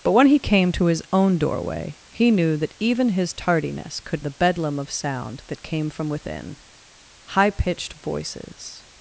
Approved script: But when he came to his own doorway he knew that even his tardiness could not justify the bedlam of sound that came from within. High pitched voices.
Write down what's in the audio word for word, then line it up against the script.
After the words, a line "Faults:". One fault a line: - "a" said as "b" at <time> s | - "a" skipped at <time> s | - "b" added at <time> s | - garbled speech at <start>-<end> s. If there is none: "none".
But when he came to his own doorway he knew that even his tardiness could the bedlam of sound that came from within. High pitched voices.
Faults:
- "not justify" skipped at 4.2 s